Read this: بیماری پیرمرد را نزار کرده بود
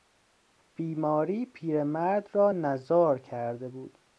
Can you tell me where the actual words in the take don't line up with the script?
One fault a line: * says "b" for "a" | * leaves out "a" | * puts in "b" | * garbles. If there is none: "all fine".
all fine